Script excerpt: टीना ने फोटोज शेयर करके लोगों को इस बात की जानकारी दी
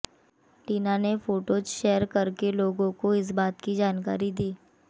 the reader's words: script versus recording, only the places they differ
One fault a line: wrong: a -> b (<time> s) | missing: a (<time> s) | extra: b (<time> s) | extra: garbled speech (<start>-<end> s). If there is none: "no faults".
no faults